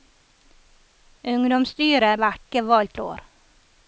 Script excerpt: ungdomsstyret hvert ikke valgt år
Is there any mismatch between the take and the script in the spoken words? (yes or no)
no